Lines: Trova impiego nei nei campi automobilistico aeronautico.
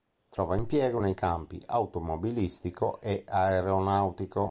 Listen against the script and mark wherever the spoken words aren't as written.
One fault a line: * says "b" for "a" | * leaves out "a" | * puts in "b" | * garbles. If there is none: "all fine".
* leaves out "nei"
* puts in "e"